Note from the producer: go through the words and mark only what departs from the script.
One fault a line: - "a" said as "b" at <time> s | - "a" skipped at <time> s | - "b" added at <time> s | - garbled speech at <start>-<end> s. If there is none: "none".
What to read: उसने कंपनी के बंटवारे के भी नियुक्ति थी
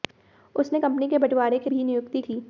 none